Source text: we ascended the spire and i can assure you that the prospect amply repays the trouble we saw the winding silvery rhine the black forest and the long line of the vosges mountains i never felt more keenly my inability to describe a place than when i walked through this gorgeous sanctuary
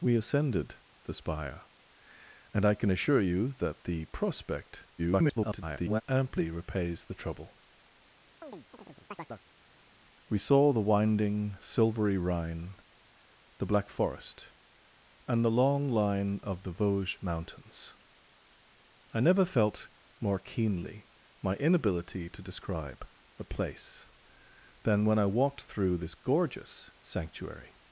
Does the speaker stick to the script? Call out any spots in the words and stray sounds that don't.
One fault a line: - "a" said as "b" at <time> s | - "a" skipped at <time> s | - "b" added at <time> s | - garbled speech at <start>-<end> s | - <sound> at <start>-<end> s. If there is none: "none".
- garbled speech at 5.0-6.0 s
- chirp at 8.4-9.5 s